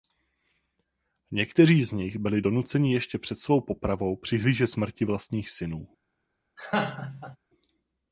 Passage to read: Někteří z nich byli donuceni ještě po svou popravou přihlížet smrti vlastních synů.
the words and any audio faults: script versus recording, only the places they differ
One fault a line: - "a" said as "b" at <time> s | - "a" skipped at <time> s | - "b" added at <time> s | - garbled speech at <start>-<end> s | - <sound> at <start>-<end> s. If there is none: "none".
- "po" said as "před" at 3.2 s
- laugh at 6.6-7.4 s